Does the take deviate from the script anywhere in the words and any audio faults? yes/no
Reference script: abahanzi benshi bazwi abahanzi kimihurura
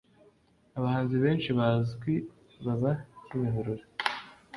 yes